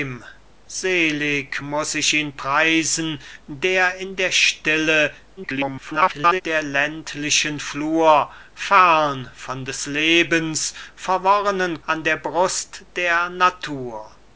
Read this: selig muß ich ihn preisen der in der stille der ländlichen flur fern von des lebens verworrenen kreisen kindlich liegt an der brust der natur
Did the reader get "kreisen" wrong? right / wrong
wrong